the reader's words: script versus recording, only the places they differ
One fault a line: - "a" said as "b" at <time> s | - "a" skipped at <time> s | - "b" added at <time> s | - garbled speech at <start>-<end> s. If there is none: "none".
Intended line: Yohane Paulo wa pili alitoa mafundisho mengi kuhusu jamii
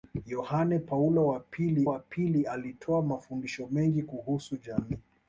- "wa pili" added at 1.9 s